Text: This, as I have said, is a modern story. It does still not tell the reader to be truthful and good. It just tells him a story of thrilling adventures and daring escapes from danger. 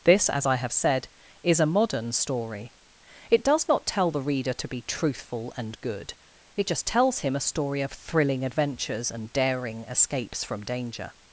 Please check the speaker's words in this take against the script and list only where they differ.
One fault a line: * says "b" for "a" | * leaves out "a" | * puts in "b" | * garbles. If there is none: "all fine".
* leaves out "still"